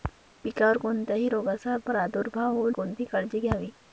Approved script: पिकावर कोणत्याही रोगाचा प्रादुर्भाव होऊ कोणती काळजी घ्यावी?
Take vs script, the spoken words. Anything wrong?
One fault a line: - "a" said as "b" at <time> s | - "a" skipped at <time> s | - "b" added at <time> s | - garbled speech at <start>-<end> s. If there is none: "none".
none